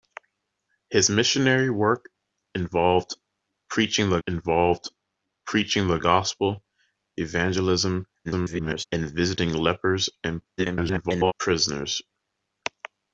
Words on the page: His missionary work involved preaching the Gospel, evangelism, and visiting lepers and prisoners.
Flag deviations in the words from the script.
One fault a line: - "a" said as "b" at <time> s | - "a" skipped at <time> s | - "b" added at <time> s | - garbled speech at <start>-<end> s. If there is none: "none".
- "involved preaching the" added at 4.3 s
- garbled speech at 8.2-8.8 s
- garbled speech at 10.6-11.3 s